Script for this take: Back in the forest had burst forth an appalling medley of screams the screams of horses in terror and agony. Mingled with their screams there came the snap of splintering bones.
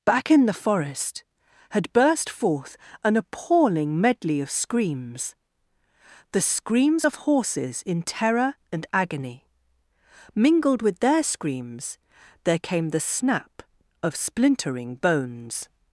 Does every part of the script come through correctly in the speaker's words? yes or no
yes